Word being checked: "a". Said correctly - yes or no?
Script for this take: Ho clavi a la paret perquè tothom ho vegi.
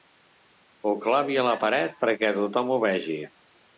yes